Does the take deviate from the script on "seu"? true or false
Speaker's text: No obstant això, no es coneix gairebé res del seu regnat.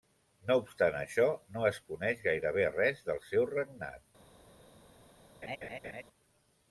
false